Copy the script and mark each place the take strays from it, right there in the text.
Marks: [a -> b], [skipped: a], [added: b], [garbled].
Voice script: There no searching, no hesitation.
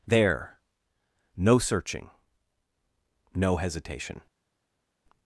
There no searching, no hesitation.